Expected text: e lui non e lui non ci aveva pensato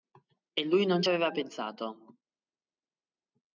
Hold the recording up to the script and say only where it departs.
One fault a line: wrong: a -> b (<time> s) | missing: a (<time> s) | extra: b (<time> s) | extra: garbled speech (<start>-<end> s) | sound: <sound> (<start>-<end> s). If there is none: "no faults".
missing: e lui non (1.0 s)